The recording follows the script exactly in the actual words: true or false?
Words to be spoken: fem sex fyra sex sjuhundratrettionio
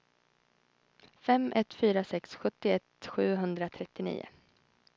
false